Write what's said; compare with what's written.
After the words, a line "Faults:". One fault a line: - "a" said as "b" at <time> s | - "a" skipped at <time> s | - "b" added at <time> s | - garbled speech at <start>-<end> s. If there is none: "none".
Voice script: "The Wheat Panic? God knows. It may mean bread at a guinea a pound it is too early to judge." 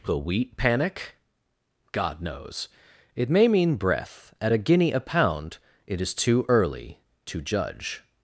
"The Wheat Panic? God knows. It may mean breath at a guinea a pound it is too early to judge."
Faults:
- "bread" said as "breath" at 3.8 s